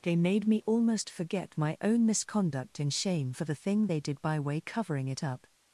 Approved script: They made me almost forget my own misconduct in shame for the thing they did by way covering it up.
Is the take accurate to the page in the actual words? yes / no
yes